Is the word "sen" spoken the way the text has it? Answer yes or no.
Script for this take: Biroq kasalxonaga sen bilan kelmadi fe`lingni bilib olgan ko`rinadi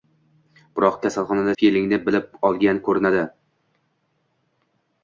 no